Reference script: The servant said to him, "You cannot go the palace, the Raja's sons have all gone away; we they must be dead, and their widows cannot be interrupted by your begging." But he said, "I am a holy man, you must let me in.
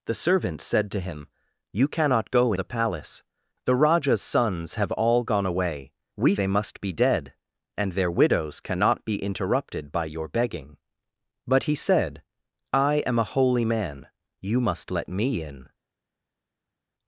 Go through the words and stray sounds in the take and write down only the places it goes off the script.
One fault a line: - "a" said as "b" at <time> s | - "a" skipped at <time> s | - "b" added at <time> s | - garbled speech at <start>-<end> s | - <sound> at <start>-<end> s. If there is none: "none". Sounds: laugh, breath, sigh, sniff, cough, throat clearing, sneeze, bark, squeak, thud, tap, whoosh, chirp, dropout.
none